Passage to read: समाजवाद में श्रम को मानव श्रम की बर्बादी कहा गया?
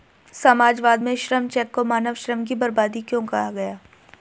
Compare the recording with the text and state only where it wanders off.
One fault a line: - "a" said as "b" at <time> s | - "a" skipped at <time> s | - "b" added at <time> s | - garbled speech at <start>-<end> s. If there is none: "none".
- "चेक" added at 1.5 s
- "क्यों" added at 3.0 s